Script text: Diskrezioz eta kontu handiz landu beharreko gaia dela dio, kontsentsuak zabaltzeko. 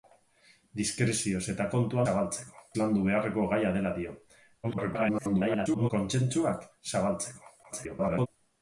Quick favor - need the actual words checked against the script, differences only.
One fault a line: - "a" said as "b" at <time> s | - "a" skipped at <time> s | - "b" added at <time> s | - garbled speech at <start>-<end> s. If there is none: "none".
- "handiz" said as "zabaltzeko" at 2.1 s
- garbled speech at 4.6-5.9 s
- garbled speech at 7.6-8.3 s